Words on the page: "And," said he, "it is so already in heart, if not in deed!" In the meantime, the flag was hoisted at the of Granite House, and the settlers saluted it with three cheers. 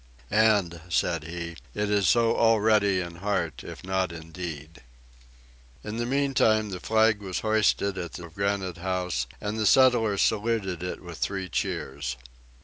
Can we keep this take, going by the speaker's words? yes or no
yes